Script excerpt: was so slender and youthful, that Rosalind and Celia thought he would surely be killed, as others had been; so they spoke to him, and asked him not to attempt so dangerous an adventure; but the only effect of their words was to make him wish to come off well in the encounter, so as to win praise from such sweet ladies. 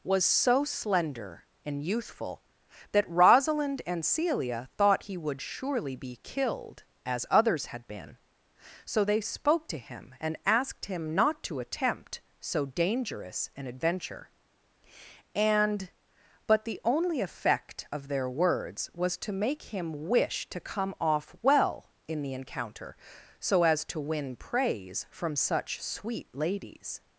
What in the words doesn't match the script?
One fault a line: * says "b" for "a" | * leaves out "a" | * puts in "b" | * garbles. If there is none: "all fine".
* puts in "and"